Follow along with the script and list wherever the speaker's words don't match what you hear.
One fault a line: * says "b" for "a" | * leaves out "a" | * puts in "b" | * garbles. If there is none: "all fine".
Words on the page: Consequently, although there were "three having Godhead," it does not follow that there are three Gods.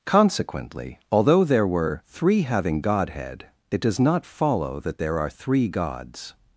all fine